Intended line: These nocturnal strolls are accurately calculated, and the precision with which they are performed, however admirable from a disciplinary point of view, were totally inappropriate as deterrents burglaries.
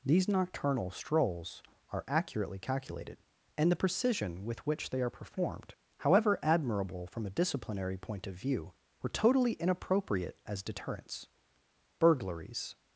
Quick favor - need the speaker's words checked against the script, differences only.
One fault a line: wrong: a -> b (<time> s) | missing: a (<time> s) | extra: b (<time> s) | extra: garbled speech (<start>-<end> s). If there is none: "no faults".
no faults